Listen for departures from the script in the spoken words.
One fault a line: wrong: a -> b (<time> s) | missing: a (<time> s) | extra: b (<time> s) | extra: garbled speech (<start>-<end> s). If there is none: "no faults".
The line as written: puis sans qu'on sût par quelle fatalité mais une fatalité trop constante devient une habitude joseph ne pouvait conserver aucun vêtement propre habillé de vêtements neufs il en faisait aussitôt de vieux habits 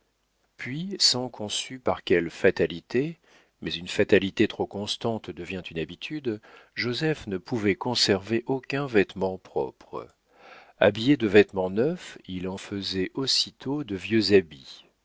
no faults